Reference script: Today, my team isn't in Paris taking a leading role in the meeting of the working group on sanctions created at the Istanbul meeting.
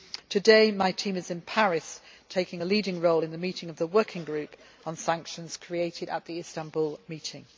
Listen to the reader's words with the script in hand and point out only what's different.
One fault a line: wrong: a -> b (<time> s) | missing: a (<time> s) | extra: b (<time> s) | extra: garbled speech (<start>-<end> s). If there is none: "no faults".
wrong: isn't -> is (1.1 s)